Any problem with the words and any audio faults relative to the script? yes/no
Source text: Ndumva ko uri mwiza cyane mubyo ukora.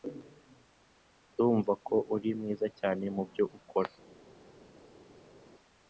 no